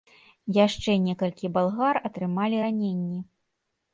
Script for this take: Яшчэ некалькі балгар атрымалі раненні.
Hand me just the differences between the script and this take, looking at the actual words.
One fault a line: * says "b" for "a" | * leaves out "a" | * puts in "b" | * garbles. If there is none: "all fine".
all fine